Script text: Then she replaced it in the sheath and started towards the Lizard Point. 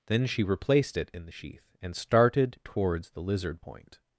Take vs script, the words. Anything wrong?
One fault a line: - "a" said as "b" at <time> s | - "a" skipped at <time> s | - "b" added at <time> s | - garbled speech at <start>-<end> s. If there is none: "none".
none